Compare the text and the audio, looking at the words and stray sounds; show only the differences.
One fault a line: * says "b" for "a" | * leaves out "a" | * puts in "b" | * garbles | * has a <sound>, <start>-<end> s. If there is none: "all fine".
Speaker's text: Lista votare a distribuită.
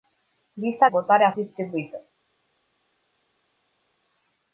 all fine